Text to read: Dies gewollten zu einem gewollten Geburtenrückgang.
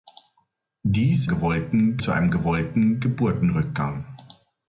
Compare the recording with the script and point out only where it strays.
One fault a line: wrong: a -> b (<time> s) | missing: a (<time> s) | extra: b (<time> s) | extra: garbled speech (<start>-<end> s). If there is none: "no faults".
no faults